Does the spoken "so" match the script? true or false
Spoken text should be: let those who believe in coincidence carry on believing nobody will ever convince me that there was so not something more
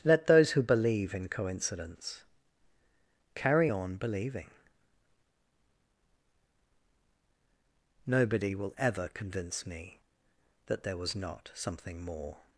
false